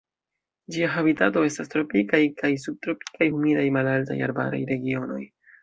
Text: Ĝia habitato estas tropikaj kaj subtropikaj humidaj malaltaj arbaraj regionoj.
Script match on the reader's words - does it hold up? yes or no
yes